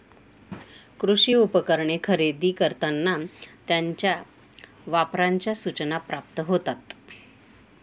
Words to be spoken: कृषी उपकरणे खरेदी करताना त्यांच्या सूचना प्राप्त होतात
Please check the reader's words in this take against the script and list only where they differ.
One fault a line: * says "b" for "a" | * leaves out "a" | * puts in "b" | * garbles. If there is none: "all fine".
* puts in "वापराच्या"